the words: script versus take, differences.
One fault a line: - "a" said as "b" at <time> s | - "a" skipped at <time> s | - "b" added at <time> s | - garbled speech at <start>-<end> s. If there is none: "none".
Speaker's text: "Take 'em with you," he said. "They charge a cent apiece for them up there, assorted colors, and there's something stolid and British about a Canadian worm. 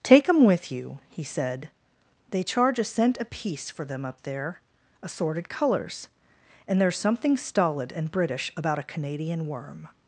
none